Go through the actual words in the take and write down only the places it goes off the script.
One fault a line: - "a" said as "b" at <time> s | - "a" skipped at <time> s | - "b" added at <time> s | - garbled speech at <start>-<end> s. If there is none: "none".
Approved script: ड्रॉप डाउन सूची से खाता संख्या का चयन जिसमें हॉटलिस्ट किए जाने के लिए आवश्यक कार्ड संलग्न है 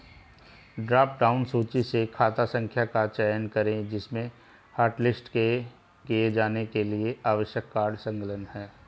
- "करें" added at 3.5 s